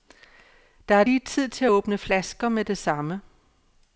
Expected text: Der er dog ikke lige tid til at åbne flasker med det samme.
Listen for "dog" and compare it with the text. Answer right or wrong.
wrong